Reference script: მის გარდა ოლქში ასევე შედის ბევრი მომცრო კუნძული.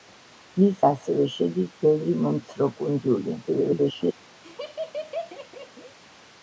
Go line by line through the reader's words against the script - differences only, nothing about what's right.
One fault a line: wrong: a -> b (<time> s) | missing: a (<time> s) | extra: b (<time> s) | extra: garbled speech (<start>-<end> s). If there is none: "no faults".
missing: გარდა ოლქში (0.8 s)
extra: garbled speech (3.5-4.1 s)